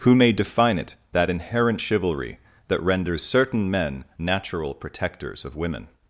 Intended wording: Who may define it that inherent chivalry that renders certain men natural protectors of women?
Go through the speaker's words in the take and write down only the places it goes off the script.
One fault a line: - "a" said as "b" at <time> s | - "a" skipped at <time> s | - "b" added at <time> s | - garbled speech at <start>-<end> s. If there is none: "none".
none